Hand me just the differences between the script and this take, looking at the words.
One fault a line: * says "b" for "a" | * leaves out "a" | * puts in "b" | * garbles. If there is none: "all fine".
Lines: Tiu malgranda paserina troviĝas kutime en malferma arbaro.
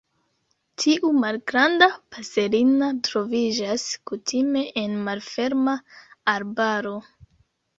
all fine